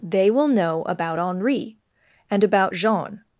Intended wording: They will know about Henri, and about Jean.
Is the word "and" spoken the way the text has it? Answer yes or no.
yes